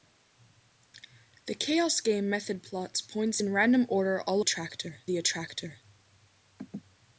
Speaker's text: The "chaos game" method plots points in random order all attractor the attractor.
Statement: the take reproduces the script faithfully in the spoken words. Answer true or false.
true